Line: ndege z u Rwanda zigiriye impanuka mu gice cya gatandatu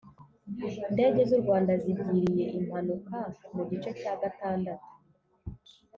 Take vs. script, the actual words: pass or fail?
pass